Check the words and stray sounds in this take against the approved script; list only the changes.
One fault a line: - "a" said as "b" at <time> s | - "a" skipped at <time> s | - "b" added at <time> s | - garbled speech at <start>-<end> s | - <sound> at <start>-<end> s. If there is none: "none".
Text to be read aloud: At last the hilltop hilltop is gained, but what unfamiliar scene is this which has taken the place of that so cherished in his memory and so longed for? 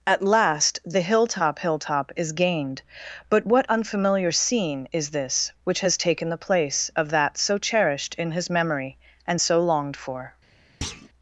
- thud at 10.8-11.1 s